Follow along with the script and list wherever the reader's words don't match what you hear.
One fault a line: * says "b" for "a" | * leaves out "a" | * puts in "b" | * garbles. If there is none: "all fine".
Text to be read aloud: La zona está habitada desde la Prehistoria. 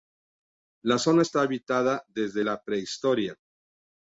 all fine